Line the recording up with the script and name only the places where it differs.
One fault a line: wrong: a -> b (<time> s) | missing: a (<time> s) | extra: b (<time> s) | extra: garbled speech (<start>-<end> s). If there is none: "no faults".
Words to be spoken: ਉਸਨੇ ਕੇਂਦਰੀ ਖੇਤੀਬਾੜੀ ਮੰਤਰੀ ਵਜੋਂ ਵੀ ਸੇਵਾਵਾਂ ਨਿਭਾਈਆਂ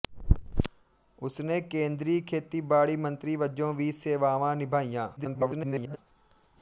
extra: garbled speech (5.2-6.0 s)